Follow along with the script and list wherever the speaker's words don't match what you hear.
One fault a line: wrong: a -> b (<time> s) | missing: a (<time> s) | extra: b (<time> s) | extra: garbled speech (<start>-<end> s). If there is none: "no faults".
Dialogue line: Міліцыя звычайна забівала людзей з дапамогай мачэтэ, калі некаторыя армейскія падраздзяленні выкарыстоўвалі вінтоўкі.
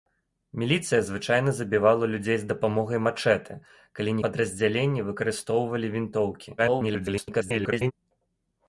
missing: некаторыя армейскія (4.2 s)
extra: garbled speech (6.6-7.9 s)